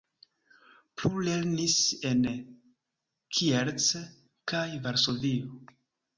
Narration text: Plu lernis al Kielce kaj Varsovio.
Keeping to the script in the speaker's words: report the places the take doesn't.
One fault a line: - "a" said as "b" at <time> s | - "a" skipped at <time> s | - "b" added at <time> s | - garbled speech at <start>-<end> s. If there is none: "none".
- "al" said as "en" at 2.1 s